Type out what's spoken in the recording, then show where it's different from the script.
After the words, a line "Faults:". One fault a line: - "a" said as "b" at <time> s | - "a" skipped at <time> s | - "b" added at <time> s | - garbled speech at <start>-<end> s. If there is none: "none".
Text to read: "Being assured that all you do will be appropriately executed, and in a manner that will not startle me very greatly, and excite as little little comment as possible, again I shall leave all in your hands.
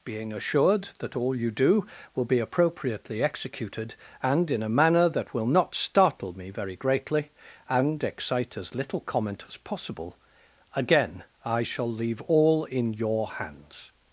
"Being assured that all you do will be appropriately executed, and in a manner that will not startle me very greatly, and excite as little comment as possible, again I shall leave all in your hands.
Faults:
- "little" skipped at 9.0 s